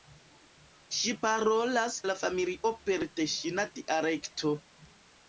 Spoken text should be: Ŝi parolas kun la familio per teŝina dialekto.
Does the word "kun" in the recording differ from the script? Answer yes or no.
yes